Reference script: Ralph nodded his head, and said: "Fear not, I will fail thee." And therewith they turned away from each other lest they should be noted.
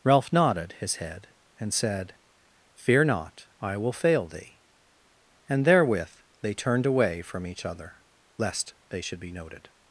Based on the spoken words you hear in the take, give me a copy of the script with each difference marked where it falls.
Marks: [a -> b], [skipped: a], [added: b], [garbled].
Ralph nodded his head, and said: "Fear not, I will fail thee." And therewith they turned away from each other lest they should be noted.